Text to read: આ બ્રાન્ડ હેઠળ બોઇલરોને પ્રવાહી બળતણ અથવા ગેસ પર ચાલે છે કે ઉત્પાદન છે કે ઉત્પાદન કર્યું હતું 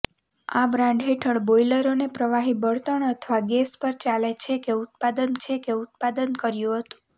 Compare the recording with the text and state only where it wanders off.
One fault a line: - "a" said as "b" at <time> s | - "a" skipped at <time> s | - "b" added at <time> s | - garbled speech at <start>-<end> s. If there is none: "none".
none